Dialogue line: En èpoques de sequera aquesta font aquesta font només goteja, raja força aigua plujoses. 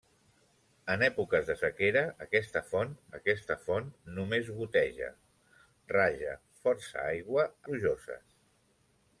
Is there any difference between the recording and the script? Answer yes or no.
no